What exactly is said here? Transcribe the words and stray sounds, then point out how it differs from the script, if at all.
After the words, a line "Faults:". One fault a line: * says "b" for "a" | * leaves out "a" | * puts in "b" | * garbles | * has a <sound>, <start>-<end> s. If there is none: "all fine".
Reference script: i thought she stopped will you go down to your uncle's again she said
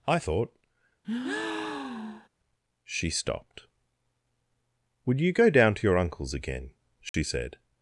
i thought she stopped would you go down to your uncle's again she said
Faults:
* has a breath, 1.0-2.3 s
* says "would" for "will"
* has a dropout, 7.1-7.1 s